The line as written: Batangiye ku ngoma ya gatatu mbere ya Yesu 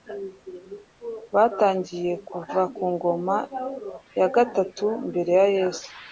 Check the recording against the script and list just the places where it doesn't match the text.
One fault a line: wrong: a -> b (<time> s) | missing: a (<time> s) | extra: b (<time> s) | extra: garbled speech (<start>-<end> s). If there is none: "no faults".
extra: kuva (2.3 s)